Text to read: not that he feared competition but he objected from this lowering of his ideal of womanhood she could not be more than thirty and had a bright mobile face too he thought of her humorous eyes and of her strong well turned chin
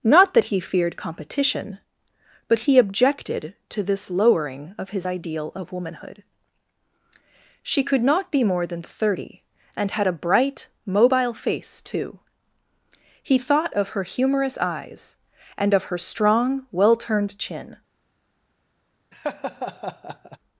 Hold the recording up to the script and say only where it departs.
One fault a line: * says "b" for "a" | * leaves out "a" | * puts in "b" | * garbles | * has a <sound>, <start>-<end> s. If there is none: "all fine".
* says "to" for "from"
* has a laugh, 19.1-20.4 s